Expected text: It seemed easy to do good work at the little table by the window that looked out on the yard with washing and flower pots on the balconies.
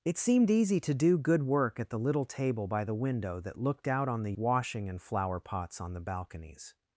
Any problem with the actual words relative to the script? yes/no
yes